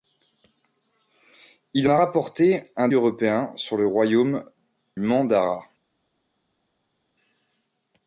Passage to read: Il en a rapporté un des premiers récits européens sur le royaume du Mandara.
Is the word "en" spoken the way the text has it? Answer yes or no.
no